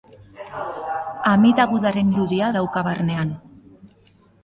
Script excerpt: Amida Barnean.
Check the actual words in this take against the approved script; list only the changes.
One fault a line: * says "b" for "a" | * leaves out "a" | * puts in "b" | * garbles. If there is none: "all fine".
* puts in "Budaren irudia dauka"